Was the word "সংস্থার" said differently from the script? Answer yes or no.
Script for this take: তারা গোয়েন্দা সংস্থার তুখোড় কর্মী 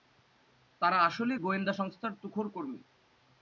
no